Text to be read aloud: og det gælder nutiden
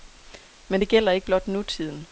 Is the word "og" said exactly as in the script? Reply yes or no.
no